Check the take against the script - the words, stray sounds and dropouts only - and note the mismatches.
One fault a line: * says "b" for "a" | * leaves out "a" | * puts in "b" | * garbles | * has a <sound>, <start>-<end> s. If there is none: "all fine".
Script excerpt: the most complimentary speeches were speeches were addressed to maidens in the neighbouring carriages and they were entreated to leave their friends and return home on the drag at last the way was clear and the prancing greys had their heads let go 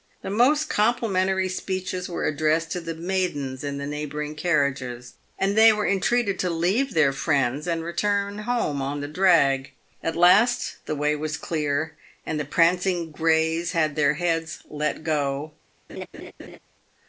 * leaves out "speeches were"
* puts in "the"
* has a laugh, 15.9-16.6 s